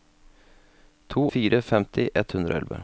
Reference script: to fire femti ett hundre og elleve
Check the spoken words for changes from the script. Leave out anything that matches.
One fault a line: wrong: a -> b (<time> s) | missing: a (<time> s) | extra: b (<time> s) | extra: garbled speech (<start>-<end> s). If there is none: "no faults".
no faults